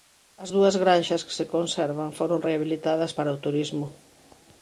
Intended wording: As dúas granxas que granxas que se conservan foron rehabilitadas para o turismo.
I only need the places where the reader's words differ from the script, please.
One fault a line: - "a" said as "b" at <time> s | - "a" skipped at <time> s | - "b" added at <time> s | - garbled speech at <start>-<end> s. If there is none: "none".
- "granxas que" skipped at 1.4 s